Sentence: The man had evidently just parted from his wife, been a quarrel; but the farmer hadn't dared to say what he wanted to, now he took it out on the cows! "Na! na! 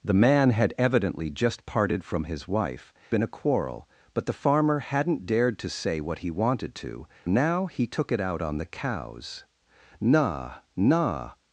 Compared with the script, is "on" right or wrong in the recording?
right